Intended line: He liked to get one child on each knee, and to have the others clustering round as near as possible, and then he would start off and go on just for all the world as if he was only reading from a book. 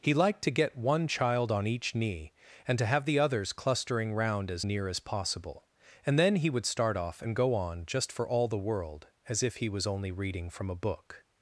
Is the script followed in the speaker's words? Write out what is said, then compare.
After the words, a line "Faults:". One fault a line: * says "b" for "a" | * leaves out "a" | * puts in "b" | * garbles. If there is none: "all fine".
He liked to get one child on each knee, and to have the others clustering round as near as possible, and then he would start off and go on just for all the world as if he was only reading from a book.
Faults:
all fine